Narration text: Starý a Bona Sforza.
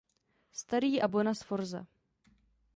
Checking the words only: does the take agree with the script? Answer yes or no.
yes